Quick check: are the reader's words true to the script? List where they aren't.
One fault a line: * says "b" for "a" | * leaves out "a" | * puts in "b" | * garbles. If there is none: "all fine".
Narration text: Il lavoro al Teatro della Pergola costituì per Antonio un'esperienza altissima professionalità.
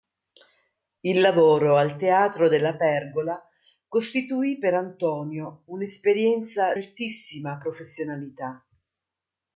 all fine